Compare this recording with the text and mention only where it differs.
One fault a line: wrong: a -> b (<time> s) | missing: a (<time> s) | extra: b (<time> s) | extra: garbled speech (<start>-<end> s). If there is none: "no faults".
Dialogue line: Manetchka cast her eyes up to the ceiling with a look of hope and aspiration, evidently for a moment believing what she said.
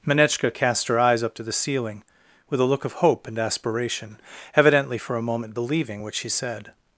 no faults